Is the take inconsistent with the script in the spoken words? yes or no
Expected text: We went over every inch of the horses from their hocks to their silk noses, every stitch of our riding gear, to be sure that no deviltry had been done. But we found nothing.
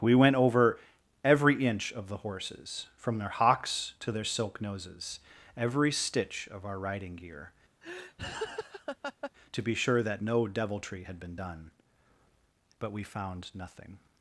no